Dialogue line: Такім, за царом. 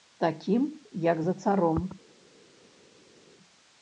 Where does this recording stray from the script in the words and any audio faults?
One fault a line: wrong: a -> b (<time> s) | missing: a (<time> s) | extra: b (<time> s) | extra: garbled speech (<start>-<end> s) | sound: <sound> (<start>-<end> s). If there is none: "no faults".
extra: як (0.9 s)